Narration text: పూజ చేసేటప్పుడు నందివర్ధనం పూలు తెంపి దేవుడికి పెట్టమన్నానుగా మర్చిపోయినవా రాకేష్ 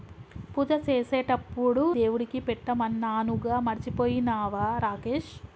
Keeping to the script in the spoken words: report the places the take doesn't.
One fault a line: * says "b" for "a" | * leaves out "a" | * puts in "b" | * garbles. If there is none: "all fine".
* leaves out "నందివర్ధనం పూలు తెంపి"